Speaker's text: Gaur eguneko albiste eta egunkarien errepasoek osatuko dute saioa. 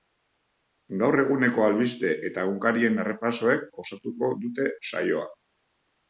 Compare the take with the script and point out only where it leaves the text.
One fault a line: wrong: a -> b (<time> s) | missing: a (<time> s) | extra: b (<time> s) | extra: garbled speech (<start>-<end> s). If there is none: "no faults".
no faults